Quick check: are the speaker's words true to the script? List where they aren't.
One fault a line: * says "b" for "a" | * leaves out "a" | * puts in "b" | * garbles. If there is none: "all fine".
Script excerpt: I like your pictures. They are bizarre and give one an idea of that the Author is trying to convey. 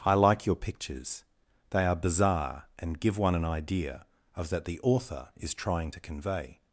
all fine